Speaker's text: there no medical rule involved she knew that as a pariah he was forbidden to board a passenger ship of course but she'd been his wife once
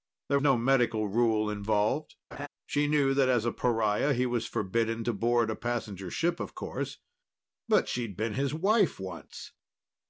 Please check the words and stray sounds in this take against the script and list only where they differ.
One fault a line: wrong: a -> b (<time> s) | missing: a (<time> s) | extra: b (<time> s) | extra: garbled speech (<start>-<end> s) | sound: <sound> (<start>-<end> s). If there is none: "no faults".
sound: laugh (2.3-2.5 s)